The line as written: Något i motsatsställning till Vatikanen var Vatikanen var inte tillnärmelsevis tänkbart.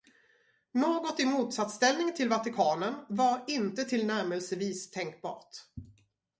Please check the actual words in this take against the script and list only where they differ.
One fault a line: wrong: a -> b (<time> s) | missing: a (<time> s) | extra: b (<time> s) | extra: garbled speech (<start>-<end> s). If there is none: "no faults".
missing: Vatikanen var (3.5 s)